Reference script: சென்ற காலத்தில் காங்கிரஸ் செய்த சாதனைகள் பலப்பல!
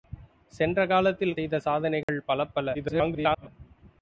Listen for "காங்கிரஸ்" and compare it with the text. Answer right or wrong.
wrong